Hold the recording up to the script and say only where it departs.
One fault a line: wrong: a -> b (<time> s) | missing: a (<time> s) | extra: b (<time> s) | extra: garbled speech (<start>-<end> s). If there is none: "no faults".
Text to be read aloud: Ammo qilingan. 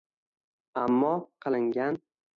no faults